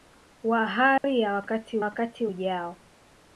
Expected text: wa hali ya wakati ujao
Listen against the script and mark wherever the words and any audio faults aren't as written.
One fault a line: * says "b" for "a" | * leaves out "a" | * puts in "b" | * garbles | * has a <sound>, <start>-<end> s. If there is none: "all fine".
* has a dropout, 1.0-1.0 s
* puts in "wakati"